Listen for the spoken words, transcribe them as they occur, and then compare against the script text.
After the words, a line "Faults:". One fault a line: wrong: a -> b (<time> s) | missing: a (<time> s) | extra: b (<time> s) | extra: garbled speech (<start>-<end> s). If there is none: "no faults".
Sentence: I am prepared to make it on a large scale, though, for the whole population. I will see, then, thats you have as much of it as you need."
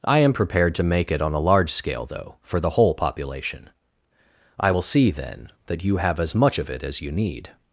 I am prepared to make it on a large scale, though, for the whole population. I will see, then, that you have as much of it as you need."
Faults:
wrong: thats -> that (5.7 s)